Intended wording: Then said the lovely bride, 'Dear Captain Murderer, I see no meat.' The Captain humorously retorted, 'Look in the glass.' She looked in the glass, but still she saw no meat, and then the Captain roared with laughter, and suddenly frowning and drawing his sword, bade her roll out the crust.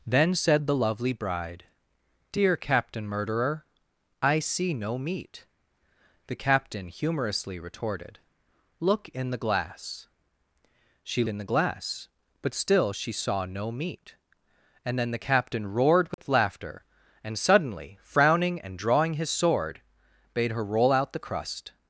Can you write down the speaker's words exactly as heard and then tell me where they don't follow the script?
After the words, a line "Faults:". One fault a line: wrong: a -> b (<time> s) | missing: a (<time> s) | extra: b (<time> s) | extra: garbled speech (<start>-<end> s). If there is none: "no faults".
Then said the lovely bride, 'Dear Captain Murderer, I see no meat.' The Captain humorously retorted, 'Look in the glass.' She in the glass, but still she saw no meat, and then the Captain roared with laughter, and suddenly frowning and drawing his sword, bade her roll out the crust.
Faults:
missing: looked (11.2 s)